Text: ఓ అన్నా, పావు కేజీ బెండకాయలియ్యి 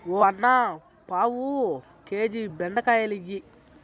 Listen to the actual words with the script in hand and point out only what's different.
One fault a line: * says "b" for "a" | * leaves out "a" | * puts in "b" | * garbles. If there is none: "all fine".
all fine